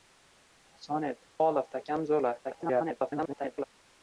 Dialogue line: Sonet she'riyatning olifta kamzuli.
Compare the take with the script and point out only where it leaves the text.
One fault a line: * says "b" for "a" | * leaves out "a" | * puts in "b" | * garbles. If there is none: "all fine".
* leaves out "she'riyatning"
* garbles